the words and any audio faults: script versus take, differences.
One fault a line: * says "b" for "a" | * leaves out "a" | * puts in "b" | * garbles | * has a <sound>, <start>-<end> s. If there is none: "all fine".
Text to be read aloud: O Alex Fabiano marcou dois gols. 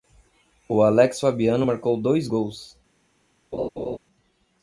* has a laugh, 3.5-4.0 s